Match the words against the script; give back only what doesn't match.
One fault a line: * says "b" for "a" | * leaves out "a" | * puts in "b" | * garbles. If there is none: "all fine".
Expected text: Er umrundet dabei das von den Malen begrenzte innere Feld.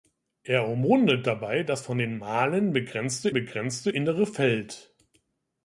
* puts in "begrenzte"